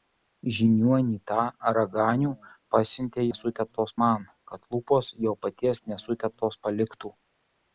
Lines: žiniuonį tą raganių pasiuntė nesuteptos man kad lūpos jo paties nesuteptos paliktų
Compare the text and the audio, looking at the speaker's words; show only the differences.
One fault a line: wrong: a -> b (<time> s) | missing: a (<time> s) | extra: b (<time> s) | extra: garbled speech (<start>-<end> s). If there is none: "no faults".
no faults